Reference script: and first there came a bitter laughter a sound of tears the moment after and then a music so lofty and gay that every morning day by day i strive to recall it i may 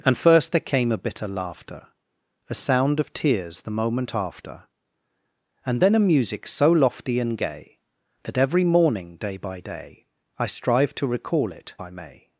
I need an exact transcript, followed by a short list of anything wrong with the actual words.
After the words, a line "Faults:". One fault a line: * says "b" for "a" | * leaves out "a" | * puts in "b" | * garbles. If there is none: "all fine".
and first there came a bitter laughter a sound of tears the moment after and then a music so lofty and gay that every morning day by day i strive to recall it i may
Faults:
all fine